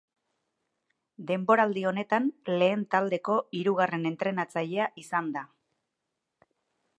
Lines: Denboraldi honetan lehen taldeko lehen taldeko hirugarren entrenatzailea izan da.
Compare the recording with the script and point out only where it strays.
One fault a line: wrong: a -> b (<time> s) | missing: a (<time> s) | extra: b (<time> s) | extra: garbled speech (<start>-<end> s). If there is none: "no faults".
missing: lehen taldeko (3.4 s)